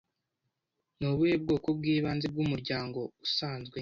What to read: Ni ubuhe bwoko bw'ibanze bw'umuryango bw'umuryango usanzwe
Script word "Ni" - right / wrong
right